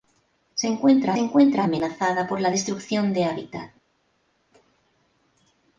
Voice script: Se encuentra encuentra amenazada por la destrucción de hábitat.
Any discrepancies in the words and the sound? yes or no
no